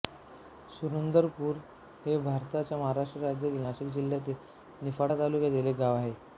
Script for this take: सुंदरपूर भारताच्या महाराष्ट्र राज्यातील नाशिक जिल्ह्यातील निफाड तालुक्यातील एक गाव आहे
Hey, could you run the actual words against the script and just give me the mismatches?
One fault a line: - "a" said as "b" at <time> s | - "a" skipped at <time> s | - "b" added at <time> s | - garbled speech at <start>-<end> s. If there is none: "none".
- "हे" added at 2.0 s